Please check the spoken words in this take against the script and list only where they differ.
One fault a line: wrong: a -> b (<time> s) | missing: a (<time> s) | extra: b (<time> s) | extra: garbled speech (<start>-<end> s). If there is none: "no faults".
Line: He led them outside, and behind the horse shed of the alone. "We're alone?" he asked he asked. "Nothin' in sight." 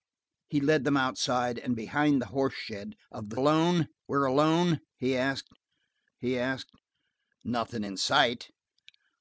no faults